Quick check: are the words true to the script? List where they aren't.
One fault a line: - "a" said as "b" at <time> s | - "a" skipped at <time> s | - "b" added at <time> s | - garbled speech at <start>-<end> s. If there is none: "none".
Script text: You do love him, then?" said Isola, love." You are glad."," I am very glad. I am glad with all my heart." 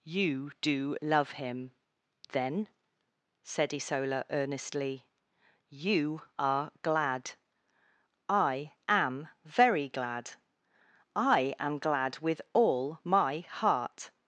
- "love" said as "earnestly" at 4.3 s